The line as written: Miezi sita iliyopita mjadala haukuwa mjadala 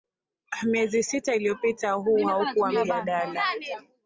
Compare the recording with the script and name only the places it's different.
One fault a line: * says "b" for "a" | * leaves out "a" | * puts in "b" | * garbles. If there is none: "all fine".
* says "huu" for "mjadala"